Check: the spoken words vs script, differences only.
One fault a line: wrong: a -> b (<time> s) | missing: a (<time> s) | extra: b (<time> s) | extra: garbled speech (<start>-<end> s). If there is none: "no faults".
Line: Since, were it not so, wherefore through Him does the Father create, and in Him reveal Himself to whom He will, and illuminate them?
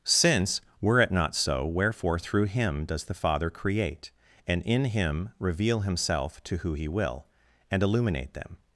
wrong: whom -> who (6.6 s)